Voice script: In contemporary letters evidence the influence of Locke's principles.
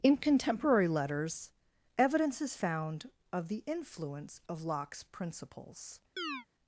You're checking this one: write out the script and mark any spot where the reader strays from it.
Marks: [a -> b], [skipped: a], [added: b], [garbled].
In contemporary letters evidence [added: is found of] the influence of Locke's principles.